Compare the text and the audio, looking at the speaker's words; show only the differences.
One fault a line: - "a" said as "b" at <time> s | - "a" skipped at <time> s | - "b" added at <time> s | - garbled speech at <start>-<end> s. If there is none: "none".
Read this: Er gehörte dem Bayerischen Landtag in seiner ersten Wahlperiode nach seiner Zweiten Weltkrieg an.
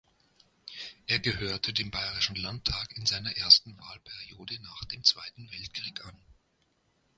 - "seiner" said as "dem" at 4.8 s